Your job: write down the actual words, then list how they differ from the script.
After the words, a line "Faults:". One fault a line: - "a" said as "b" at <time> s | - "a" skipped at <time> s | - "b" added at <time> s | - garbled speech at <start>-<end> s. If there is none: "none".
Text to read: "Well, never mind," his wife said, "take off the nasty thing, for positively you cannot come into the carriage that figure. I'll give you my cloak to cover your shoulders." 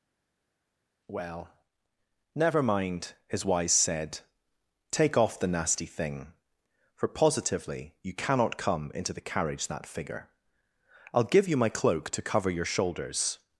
"Well, never mind," his wise said, "take off the nasty thing, for positively you cannot come into the carriage that figure. I'll give you my cloak to cover your shoulders."
Faults:
- "wife" said as "wise" at 3.4 s